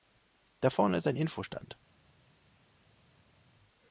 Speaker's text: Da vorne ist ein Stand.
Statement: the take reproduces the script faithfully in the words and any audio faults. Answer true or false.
false